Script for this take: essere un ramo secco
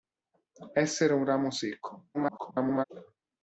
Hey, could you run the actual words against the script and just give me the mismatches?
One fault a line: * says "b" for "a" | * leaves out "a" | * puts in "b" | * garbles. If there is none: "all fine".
* garbles